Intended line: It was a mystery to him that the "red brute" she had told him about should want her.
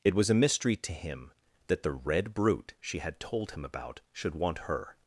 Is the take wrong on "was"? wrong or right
right